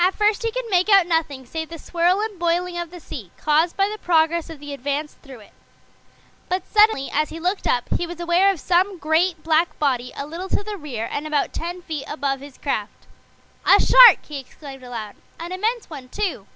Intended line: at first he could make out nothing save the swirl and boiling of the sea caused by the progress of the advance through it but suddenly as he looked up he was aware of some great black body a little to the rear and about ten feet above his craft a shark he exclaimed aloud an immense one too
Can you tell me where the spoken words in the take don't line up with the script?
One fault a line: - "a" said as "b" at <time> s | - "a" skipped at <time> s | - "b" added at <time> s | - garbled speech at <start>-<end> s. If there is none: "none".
none